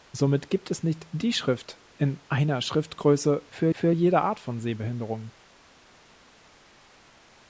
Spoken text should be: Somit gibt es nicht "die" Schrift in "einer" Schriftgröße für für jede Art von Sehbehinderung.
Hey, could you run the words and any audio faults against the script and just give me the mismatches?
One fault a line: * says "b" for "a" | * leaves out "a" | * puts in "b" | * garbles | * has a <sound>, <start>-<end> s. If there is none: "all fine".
all fine